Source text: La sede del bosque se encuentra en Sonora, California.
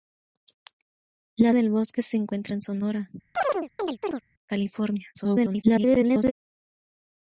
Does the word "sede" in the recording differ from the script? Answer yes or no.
yes